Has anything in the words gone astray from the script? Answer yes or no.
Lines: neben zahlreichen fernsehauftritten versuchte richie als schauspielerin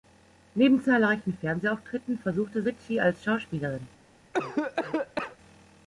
no